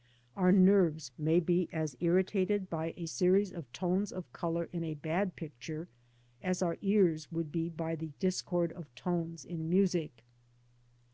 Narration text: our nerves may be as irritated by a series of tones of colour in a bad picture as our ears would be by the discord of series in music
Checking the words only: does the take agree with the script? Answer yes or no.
no